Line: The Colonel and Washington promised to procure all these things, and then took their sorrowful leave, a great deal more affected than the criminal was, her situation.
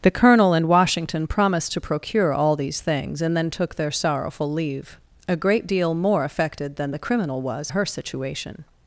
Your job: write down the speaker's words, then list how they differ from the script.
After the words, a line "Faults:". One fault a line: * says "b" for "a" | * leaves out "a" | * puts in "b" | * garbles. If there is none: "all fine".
The Colonel and Washington promised to procure all these things, and then took their sorrowful leave, a great deal more affected than the criminal was, her situation.
Faults:
all fine